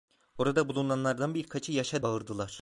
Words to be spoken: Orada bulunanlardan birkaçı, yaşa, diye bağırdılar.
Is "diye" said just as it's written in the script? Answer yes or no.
no